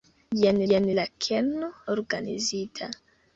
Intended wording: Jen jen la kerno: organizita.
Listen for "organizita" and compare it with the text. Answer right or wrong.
right